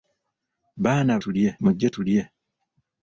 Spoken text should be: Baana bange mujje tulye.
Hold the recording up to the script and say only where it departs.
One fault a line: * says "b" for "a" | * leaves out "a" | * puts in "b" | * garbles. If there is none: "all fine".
* says "tulye" for "bange"